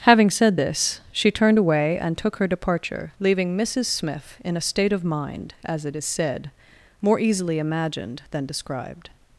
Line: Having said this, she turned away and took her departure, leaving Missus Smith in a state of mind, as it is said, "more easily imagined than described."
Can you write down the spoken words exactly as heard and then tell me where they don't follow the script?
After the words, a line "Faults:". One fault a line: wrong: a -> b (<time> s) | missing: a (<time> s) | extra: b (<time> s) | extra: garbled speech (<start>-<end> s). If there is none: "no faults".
Having said this, she turned away and took her departure, leaving Missus Smith in a state of mind, as it is said, "more easily imagined than described."
Faults:
no faults